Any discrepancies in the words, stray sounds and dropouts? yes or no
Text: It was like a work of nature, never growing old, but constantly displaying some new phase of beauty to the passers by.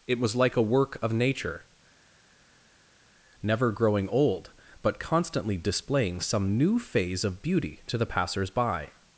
no